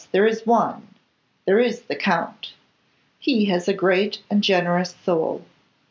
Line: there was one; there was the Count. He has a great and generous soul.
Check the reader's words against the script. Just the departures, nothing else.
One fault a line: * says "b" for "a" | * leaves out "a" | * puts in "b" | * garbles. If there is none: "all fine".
* says "is" for "was"
* says "is" for "was"